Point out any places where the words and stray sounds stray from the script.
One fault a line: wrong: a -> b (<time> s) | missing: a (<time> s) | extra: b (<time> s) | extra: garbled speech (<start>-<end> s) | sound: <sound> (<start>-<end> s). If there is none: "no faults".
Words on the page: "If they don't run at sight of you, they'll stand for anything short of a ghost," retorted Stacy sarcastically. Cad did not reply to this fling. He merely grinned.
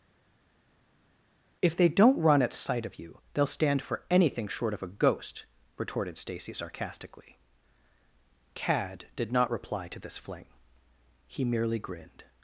no faults